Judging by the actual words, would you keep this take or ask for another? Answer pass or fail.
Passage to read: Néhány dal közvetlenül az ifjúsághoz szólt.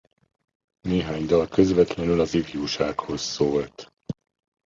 pass